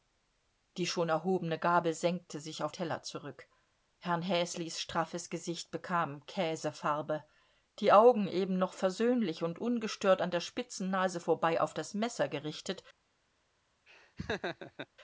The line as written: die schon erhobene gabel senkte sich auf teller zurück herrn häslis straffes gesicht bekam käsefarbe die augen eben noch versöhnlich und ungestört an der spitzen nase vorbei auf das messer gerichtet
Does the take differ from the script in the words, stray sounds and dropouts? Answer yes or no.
yes